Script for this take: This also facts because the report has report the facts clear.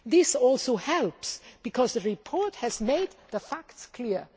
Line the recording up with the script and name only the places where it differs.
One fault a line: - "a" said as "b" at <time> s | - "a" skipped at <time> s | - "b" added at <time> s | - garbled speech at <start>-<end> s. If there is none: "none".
- "facts" said as "helps" at 0.8 s
- "report" said as "made" at 2.8 s